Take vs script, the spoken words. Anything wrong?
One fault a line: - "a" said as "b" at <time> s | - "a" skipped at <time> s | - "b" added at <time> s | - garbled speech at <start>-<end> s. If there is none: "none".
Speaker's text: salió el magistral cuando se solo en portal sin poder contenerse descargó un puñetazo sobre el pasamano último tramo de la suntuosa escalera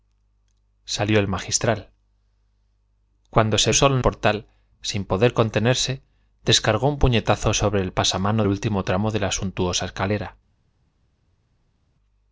none